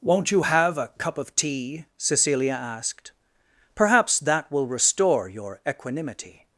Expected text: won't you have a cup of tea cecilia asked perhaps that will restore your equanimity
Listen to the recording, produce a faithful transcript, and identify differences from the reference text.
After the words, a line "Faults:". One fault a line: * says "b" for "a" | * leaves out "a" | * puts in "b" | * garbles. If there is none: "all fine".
won't you have a cup of tea cecilia asked perhaps that will restore your equanimity
Faults:
all fine